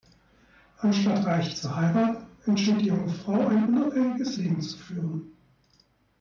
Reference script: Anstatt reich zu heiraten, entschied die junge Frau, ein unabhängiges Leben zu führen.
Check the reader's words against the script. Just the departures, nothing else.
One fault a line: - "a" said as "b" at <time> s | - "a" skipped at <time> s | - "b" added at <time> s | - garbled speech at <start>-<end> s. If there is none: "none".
none